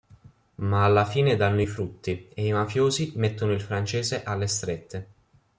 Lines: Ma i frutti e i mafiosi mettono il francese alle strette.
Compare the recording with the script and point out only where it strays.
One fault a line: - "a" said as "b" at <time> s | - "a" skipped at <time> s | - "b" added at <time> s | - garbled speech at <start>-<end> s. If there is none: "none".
- "alla fine danno" added at 0.8 s